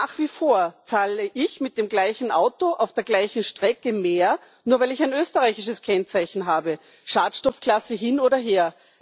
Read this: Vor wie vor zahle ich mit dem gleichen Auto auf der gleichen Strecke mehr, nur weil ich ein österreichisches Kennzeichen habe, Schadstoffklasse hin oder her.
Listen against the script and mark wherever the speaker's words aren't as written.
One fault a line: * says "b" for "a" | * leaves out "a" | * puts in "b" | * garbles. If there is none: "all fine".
* says "Nach" for "Vor"